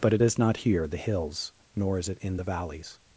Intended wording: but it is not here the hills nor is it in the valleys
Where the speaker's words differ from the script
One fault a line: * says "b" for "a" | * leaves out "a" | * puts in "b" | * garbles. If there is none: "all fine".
all fine